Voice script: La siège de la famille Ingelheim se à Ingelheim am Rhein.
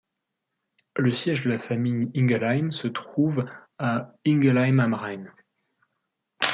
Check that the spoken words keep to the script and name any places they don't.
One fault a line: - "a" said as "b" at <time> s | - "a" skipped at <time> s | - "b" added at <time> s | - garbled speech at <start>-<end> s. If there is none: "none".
- "La" said as "Le" at 1.0 s
- "trouve" added at 2.9 s